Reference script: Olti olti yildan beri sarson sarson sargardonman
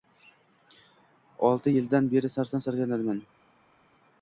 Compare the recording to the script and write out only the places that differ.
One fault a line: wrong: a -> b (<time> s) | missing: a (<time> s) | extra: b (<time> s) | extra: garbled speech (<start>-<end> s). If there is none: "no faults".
missing: olti (1.8 s)
missing: sarson (2.7 s)